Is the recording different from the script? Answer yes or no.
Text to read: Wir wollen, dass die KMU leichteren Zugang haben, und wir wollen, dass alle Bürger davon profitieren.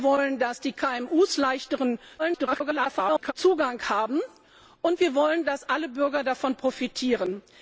yes